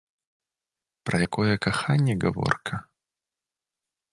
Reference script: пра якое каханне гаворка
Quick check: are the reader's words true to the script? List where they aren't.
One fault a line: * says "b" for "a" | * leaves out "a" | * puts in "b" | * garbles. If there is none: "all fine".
all fine